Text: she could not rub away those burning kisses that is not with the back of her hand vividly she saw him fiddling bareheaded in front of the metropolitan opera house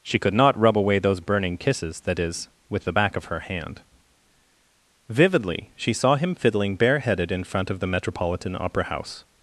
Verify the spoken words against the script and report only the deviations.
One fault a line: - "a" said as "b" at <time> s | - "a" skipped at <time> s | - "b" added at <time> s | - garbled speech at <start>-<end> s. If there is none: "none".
- "not" skipped at 2.5 s